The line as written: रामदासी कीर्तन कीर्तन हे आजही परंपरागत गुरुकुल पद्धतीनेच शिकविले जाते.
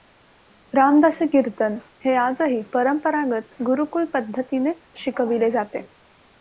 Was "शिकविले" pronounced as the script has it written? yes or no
yes